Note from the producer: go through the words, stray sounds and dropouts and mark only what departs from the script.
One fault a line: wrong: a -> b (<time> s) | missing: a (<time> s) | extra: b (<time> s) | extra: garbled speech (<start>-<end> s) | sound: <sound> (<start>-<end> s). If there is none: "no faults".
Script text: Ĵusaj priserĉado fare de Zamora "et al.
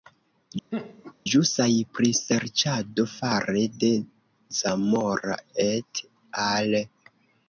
sound: laugh (0.7-1.1 s)